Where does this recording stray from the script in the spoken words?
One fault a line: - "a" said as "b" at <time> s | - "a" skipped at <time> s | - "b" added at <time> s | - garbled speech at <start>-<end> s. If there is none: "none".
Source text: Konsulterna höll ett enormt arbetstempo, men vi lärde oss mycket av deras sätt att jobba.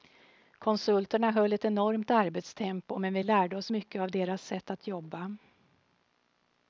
none